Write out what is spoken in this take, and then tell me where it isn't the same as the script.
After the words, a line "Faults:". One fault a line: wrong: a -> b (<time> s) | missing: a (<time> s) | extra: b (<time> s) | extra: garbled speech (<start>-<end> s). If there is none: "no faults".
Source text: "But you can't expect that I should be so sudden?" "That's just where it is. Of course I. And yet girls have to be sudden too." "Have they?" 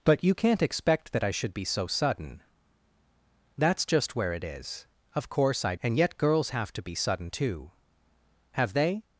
"But you can't expect that I should be so sudden?" "That's just where it is. Of course I. And yet girls have to be sudden too." "Have they?"
Faults:
no faults